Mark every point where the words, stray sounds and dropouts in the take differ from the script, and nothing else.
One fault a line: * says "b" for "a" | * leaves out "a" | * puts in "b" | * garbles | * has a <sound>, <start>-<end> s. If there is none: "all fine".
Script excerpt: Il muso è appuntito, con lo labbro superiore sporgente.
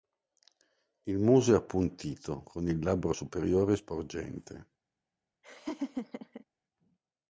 * says "il" for "lo"
* has a laugh, 5.4-6.4 s